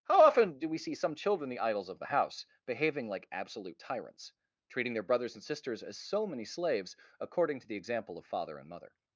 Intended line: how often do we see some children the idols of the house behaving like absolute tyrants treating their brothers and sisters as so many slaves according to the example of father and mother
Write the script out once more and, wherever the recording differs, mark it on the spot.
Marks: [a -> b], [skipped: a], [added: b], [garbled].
how often do we see some children the idols of the house behaving like absolute tyrants treating their brothers and sisters as so many slaves according to the example of father and mother